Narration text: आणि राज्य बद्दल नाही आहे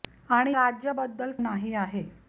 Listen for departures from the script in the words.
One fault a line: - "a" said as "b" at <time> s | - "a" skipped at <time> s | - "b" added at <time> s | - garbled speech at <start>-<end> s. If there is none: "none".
none